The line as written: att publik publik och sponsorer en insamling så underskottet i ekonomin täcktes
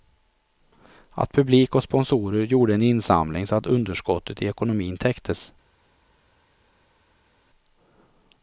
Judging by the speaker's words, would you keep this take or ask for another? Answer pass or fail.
fail